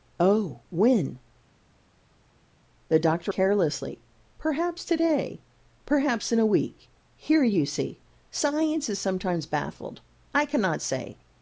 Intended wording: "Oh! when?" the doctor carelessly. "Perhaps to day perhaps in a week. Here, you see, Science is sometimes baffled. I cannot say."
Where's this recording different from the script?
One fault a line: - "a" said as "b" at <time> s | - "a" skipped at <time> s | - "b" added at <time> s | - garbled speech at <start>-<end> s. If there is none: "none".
none